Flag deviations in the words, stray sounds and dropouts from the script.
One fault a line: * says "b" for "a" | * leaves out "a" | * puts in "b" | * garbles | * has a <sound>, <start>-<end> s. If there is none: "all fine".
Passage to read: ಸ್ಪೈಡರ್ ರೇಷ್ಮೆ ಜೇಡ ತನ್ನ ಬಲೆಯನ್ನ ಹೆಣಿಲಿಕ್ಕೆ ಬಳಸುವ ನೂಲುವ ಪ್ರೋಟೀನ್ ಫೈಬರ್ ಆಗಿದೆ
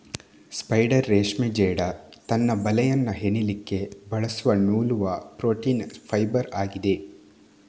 all fine